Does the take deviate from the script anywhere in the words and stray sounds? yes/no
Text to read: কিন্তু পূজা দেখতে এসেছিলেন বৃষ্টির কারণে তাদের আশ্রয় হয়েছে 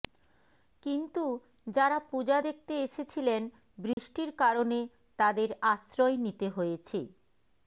yes